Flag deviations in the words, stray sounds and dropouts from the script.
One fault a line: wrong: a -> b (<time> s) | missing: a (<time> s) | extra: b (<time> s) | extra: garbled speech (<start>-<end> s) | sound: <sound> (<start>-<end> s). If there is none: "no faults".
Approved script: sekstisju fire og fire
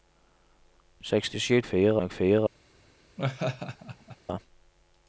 sound: laugh (3.2-4.2 s)